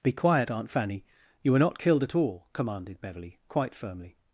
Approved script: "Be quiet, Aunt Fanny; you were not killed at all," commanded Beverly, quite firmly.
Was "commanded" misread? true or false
false